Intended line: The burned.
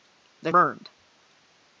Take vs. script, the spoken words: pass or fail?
pass